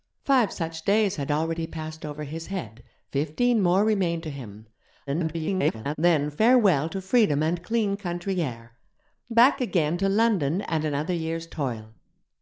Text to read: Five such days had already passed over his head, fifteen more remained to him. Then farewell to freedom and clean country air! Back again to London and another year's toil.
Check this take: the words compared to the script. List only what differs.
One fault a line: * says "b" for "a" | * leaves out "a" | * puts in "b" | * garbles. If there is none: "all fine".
* garbles